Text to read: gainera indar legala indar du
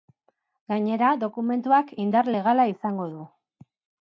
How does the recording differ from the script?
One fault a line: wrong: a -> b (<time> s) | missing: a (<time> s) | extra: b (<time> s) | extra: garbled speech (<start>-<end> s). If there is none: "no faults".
extra: dokumentuak (1.2 s)
wrong: indar -> izango (2.7 s)